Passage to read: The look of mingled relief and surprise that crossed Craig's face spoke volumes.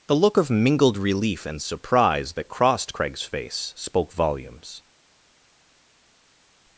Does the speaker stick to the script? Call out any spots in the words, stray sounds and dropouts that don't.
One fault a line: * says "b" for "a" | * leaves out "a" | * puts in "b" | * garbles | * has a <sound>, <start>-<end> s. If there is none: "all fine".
all fine